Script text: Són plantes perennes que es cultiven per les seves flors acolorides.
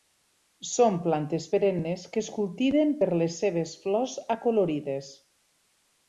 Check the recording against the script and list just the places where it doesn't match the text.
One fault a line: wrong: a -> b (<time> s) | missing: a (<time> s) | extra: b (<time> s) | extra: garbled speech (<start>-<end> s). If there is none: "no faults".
no faults